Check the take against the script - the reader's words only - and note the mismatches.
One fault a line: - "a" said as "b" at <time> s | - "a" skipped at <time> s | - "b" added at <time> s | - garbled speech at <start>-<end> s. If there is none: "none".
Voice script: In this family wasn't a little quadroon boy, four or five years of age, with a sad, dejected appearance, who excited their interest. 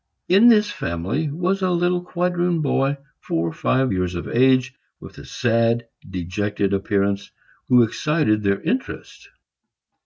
- "wasn't" said as "was" at 1.3 s